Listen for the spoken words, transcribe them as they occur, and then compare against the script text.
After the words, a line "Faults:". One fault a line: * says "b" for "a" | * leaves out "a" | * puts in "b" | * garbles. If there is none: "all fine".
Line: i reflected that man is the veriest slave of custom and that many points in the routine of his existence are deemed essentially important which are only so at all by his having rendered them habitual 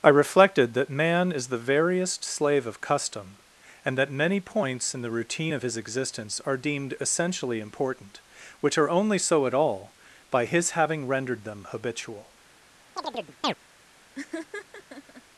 i reflected that man is the veriest slave of custom and that many points in the routine of his existence are deemed essentially important which are only so at all by his having rendered them habitual
Faults:
all fine